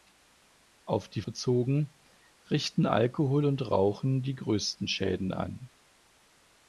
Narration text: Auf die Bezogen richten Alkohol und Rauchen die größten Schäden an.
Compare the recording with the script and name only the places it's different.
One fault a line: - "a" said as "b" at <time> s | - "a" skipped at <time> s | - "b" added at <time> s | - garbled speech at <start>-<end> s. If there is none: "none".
none